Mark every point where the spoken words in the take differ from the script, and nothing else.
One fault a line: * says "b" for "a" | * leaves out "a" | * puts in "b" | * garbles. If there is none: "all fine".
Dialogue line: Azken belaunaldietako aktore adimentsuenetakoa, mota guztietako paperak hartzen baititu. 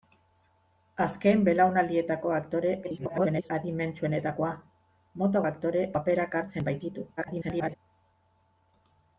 * garbles
* says "aktore" for "guztietako"
* garbles